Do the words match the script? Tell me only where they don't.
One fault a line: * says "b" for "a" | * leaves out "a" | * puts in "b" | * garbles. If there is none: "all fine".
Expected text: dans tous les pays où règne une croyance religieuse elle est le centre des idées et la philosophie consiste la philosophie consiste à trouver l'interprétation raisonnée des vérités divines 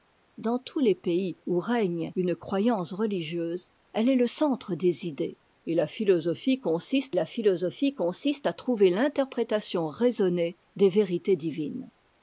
all fine